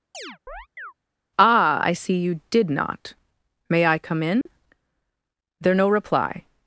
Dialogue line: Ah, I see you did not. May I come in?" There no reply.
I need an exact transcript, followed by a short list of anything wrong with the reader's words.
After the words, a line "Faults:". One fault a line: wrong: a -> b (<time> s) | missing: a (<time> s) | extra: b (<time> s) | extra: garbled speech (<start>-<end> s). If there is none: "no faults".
Ah, I see you did not. May I come in?" There no reply.
Faults:
no faults